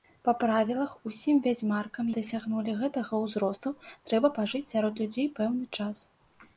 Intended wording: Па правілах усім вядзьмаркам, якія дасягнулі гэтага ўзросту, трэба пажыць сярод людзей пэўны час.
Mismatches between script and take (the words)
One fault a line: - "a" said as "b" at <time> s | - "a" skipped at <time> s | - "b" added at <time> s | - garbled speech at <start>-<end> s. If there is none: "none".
- "якія" skipped at 2.1 s